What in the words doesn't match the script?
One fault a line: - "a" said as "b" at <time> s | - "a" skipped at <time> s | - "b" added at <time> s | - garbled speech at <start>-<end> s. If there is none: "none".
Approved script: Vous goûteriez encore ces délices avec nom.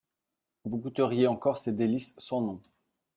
- "avec" said as "sans" at 2.2 s